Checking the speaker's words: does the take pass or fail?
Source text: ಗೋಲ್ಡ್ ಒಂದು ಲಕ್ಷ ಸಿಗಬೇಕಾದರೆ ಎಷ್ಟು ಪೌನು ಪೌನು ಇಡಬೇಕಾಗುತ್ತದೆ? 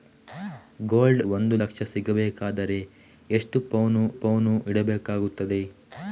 pass